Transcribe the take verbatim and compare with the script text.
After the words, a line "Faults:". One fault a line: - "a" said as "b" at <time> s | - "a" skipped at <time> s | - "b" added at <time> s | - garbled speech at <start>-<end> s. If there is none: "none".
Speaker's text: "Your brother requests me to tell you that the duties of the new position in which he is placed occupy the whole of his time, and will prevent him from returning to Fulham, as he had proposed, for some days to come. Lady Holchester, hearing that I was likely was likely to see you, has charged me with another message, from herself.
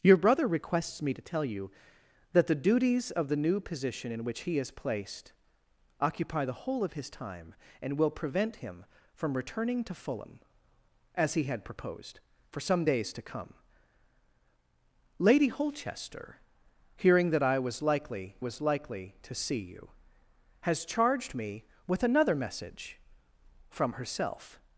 "Your brother requests me to tell you that the duties of the new position in which he is placed occupy the whole of his time, and will prevent him from returning to Fulham, as he had proposed, for some days to come. Lady Holchester, hearing that I was likely was likely to see you, has charged me with another message, from herself.
Faults:
none